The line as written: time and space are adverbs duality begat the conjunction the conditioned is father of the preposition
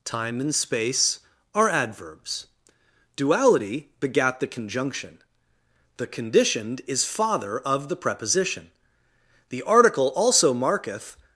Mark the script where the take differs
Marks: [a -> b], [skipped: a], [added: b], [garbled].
time and space are adverbs duality begat the conjunction the conditioned is father of the preposition [added: the article also marketh]